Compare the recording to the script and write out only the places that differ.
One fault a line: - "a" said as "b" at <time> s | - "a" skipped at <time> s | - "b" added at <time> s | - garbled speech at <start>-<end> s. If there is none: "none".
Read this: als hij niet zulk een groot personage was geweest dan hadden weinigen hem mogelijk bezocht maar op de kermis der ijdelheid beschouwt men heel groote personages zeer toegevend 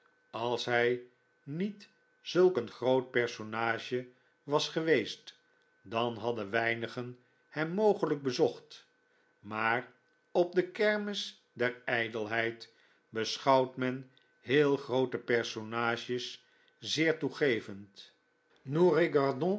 none